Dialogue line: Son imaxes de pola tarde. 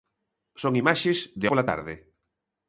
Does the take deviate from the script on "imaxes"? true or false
false